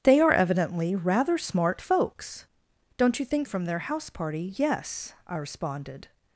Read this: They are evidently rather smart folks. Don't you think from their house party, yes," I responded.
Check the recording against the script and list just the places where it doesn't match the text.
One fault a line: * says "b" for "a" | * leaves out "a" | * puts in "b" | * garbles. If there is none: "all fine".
all fine